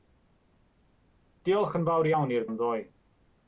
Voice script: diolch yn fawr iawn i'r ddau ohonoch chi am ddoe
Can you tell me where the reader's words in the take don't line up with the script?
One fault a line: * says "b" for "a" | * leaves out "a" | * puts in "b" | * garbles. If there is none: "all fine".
* leaves out "ddau ohonoch chi"